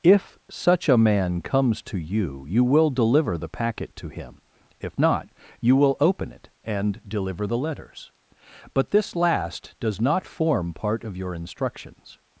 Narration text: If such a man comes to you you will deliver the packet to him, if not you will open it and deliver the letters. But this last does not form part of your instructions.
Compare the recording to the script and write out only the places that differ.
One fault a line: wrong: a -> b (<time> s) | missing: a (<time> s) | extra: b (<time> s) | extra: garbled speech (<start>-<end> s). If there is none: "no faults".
no faults